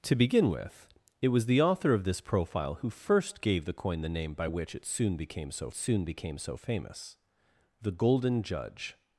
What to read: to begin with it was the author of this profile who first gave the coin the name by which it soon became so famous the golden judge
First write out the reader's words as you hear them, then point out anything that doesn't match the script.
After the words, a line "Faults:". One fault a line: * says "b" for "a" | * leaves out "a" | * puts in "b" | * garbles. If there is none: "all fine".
to begin with it was the author of this profile who first gave the coin the name by which it soon became so soon became so famous the golden judge
Faults:
* puts in "soon became so"